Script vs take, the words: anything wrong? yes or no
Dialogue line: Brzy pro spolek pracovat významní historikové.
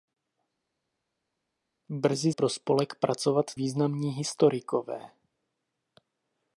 no